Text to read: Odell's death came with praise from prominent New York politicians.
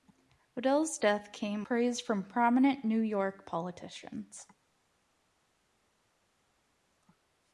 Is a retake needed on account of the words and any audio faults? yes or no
yes